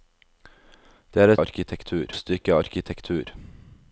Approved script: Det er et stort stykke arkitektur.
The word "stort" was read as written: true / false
false